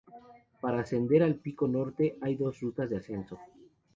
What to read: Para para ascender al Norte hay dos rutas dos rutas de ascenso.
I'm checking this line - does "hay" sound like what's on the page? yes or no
yes